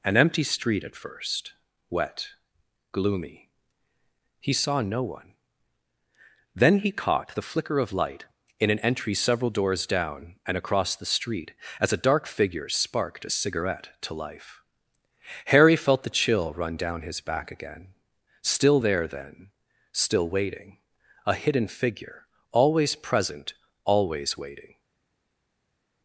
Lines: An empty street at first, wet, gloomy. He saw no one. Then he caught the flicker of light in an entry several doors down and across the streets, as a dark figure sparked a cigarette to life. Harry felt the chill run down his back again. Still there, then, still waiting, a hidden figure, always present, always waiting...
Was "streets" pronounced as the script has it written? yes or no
no